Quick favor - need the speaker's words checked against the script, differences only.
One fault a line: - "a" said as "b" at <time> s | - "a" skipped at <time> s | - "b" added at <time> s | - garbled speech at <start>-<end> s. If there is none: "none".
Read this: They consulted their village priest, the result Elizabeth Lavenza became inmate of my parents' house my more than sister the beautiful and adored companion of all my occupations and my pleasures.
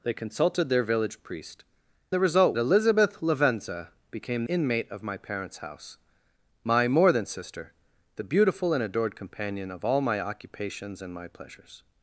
none